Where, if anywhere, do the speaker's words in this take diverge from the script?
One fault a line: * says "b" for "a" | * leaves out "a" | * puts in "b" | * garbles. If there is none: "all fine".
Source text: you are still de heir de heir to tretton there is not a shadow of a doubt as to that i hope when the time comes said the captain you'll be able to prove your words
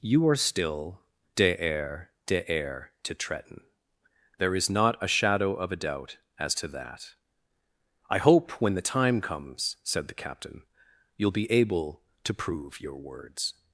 all fine